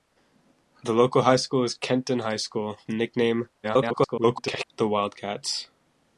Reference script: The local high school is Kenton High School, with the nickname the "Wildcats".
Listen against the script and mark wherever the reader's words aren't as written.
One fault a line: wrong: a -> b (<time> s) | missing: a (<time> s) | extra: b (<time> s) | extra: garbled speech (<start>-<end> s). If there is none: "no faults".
missing: with (2.8 s)
extra: garbled speech (3.6-4.7 s)